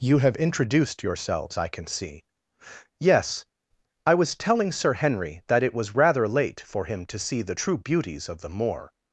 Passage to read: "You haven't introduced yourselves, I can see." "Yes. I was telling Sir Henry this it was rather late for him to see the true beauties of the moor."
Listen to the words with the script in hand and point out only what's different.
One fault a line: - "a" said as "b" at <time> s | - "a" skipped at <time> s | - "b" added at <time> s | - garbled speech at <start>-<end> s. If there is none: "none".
- "haven't" said as "have" at 0.2 s
- "this" said as "that" at 5.5 s